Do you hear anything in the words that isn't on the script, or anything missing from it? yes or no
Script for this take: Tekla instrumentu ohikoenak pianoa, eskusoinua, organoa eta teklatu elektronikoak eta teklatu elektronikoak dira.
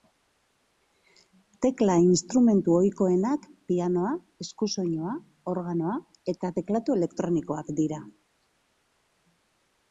yes